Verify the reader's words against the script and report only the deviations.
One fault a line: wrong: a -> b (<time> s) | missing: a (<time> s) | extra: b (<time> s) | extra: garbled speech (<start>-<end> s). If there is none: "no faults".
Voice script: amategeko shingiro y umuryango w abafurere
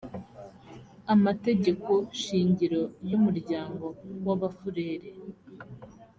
no faults